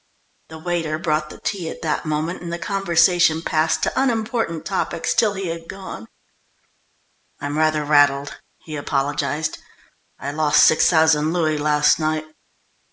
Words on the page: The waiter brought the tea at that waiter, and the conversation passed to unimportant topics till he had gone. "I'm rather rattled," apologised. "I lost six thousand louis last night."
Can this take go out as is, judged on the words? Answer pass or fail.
fail